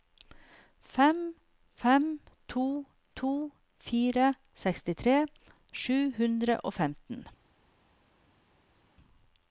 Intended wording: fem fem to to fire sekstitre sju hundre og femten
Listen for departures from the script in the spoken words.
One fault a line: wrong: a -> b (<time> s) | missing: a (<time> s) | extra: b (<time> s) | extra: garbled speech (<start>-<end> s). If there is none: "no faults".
no faults